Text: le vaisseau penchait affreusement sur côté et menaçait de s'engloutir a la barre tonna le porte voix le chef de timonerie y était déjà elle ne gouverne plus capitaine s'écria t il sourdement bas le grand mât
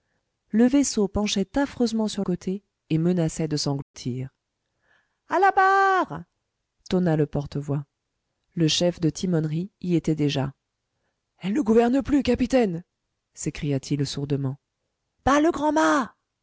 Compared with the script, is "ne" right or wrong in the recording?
right